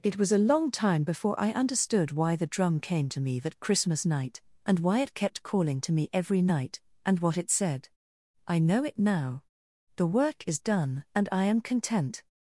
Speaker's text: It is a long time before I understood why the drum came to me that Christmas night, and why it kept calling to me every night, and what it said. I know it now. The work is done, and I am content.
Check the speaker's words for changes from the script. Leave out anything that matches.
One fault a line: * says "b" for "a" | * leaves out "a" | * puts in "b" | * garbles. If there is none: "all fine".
* says "was" for "is"